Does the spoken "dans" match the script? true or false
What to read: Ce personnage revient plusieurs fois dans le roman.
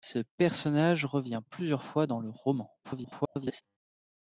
true